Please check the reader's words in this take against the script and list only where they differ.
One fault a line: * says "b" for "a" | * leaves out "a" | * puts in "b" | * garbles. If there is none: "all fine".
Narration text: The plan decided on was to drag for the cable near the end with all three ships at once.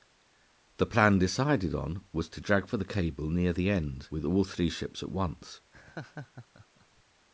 all fine